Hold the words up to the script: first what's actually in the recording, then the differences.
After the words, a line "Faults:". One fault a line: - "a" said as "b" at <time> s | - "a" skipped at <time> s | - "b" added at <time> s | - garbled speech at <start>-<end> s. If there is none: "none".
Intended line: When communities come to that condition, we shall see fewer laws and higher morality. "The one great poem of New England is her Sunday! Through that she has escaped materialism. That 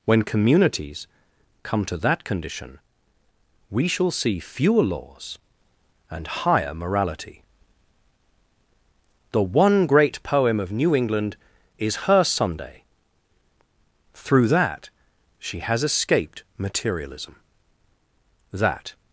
When communities come to that condition, we shall see fewer laws and higher morality. "The one great poem of New England is her Sunday! Through that she has escaped materialism. That
Faults:
none